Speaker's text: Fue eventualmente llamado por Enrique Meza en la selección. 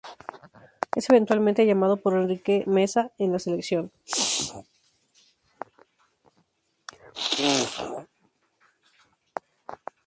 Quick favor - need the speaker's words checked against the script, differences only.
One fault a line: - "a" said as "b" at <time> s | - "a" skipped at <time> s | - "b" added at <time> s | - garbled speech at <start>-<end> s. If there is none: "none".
- "Fue" said as "Es" at 0.9 s